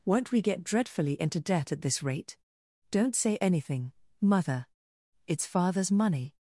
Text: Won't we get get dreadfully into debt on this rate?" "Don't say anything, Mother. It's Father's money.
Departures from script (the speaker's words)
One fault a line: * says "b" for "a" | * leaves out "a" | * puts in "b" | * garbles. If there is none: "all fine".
* leaves out "get"
* says "at" for "on"